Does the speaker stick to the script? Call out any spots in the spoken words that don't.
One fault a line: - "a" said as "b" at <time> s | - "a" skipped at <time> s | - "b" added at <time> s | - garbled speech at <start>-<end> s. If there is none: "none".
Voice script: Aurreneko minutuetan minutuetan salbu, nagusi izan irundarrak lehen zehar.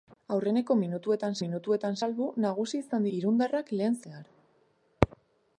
none